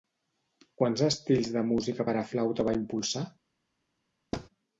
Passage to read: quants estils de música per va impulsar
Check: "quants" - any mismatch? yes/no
no